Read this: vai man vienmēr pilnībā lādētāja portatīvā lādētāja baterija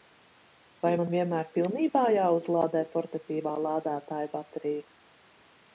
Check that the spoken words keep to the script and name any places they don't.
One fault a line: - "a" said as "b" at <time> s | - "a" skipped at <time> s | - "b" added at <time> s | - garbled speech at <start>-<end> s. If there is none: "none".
- "lādētāja" said as "jāuzlādē" at 2.2 s